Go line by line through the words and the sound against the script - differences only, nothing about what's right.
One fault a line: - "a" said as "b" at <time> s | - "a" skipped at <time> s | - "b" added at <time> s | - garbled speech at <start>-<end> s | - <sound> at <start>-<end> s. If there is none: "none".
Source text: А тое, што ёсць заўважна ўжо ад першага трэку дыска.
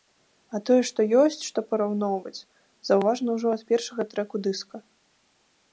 - "што параўноўваць" added at 1.5 s